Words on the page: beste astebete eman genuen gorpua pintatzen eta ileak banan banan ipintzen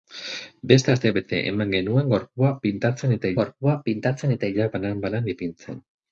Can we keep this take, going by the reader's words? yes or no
no